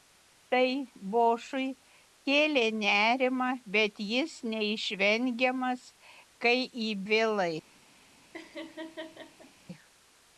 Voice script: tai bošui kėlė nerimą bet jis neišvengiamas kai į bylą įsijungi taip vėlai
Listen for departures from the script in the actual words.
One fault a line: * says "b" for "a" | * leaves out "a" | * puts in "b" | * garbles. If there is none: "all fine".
* leaves out "bylą įsijungi taip"